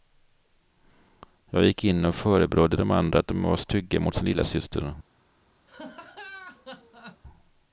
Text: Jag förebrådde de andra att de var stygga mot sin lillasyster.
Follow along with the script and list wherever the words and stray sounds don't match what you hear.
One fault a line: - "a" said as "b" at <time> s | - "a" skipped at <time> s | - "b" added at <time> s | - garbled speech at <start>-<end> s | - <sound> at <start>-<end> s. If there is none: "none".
- "gick in och" added at 1.6 s
- laugh at 5.7-7.2 s